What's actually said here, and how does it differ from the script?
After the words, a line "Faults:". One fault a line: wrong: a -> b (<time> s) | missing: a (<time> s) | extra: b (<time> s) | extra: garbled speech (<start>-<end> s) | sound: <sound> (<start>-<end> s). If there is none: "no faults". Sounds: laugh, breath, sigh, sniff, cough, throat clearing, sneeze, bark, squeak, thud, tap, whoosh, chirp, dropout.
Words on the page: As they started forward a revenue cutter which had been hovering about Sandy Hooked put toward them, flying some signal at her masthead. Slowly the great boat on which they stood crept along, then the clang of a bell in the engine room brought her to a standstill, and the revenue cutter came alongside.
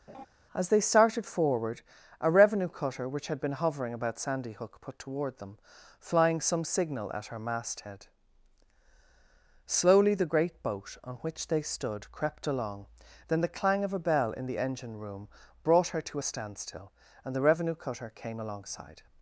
As they started forward a revenue cutter which had been hovering about Sandy Hook put toward them, flying some signal at her masthead. Slowly the great boat on which they stood crept along, then the clang of a bell in the engine room brought her to a standstill, and the revenue cutter came alongside.
Faults:
sound: laugh (0.1-0.3 s)
wrong: Hooked -> Hook (4.5 s)